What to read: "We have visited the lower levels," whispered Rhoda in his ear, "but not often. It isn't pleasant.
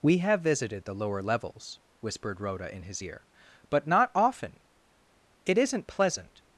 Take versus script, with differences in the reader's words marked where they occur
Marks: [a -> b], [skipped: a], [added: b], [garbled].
"We have visited the lower levels," whispered Rhoda in his ear, "but not often. It isn't pleasant.